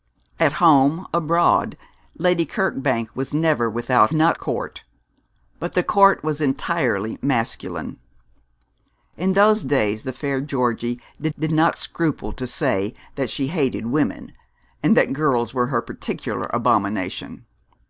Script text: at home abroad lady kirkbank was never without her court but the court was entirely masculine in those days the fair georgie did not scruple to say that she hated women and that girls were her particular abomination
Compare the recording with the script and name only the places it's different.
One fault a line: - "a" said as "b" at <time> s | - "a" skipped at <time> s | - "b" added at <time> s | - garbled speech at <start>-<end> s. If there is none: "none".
- "her" said as "not" at 4.1 s
- "did" added at 11.4 s